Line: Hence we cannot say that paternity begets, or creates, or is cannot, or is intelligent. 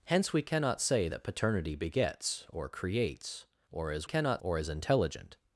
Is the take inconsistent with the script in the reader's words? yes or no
no